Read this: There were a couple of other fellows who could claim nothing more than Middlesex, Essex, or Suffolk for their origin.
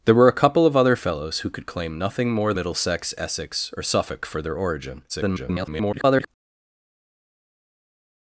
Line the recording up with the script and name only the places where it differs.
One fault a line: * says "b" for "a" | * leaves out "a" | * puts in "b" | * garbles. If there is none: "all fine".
* leaves out "than"
* garbles